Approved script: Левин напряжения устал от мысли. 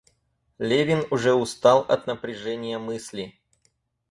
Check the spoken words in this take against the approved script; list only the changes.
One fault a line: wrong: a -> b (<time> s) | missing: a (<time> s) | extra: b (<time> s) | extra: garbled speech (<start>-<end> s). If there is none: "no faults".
wrong: напряжения -> уже (1.1 s)
extra: напряжения (2.1 s)